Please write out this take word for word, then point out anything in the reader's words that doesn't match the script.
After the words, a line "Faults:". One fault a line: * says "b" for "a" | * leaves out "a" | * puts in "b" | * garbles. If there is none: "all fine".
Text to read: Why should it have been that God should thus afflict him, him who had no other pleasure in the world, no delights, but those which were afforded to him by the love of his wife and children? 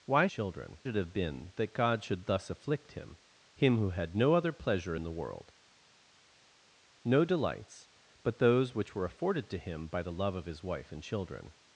Why children it have been that God should thus afflict him, him who had no other pleasure in the world, no delights, but those which were afforded to him by the love of his wife and children?
Faults:
* says "children" for "should"